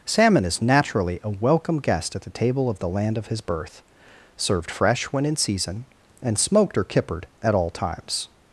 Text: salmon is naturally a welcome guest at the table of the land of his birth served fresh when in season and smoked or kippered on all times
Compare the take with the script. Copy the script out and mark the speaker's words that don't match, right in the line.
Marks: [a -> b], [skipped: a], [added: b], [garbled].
salmon is naturally a welcome guest at the table of the land of his birth served fresh when in season and smoked or kippered [on -> at] all times